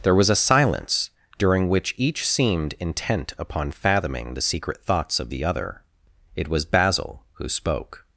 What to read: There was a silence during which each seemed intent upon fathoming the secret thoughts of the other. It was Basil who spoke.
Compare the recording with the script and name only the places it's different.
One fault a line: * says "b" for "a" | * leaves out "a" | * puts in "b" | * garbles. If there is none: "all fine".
all fine